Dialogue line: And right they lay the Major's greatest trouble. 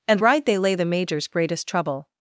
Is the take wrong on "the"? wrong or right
right